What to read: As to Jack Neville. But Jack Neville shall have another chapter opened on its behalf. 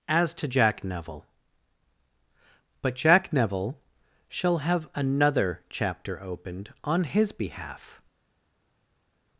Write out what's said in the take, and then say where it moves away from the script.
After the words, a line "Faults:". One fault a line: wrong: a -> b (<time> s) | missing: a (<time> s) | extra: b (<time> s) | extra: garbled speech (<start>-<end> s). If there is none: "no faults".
As to Jack Neville. But Jack Neville shall have another chapter opened on his behalf.
Faults:
wrong: its -> his (7.0 s)